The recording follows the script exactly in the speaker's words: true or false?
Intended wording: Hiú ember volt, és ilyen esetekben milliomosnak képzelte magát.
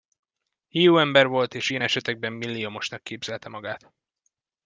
true